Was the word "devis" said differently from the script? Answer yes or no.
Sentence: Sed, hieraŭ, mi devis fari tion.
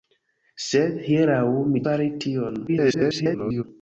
yes